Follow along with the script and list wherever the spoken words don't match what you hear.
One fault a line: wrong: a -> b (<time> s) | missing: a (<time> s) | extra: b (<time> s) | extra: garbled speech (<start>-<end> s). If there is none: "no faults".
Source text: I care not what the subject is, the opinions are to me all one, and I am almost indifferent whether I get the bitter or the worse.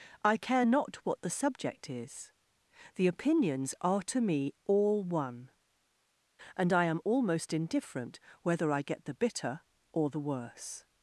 no faults